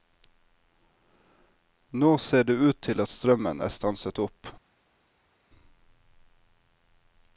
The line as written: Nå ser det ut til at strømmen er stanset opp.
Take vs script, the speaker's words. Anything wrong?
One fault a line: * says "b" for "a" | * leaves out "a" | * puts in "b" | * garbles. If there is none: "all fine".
all fine